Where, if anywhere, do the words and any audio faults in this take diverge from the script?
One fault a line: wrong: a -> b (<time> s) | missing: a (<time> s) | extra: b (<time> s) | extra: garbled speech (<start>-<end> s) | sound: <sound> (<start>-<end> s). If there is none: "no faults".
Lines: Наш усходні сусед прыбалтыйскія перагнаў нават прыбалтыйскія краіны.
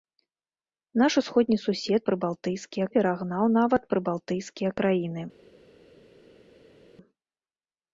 no faults